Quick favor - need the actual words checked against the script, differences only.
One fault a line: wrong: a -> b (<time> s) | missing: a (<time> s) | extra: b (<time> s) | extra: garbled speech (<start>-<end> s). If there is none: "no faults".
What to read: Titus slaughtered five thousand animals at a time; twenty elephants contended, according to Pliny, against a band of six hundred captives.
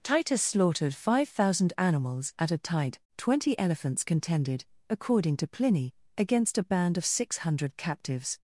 wrong: time -> tide (2.6 s)